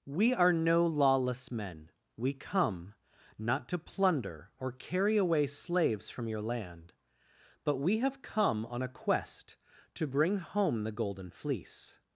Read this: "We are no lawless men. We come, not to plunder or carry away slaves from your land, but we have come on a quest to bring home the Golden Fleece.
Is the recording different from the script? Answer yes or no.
no